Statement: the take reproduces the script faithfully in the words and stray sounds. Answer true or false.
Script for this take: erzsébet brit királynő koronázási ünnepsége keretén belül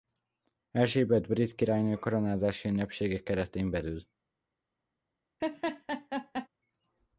false